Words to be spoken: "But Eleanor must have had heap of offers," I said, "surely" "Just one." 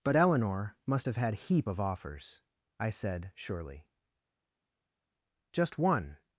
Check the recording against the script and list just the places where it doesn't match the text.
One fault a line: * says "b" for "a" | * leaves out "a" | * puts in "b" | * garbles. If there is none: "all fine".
all fine